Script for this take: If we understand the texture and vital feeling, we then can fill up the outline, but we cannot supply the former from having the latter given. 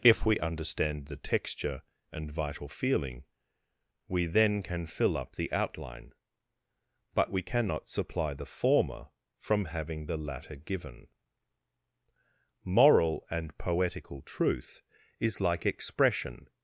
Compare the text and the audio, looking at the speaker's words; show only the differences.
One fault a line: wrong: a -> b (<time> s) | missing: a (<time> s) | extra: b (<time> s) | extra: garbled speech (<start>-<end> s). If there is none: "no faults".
extra: Moral and poetical truth is like expression (12.6 s)